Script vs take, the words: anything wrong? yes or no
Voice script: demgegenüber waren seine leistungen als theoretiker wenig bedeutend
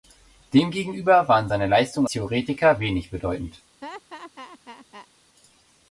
yes